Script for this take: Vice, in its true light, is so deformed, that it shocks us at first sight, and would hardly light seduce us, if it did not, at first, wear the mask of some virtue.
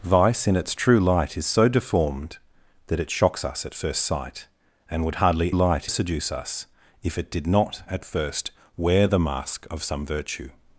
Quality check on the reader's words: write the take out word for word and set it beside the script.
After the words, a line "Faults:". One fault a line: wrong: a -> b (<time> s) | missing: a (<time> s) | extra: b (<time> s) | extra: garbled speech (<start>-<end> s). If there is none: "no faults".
Vice, in its true light, is so deformed, that it shocks us at first sight, and would hardly light seduce us, if it did not, at first, wear the mask of some virtue.
Faults:
no faults